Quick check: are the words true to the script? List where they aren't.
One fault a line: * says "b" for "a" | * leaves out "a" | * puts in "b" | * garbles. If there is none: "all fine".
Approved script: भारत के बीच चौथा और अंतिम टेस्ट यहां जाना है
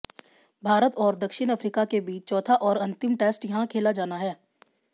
* puts in "और दक्षिण अफ्रीका"
* puts in "खेला"